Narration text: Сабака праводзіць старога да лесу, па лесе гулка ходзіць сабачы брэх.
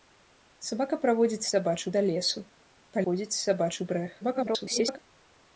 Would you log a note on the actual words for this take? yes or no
yes